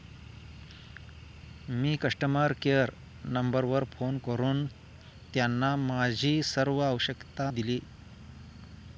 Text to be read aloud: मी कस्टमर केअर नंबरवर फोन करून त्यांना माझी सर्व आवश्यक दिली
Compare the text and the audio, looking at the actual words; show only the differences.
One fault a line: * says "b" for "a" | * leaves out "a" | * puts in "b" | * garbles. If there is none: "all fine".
all fine